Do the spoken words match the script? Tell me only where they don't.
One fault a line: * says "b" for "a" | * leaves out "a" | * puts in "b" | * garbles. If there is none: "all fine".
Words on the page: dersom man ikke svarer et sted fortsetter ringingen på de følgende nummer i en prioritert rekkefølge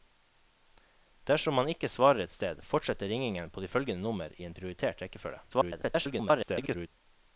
* garbles